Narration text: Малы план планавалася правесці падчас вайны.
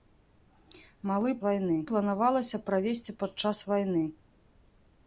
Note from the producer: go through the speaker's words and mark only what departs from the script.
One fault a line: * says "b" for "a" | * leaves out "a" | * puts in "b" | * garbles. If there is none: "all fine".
* says "вайны" for "план"